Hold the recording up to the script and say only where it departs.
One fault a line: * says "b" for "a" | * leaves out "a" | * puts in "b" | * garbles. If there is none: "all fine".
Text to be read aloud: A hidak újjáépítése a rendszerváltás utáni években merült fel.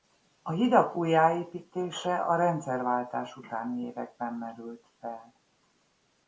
all fine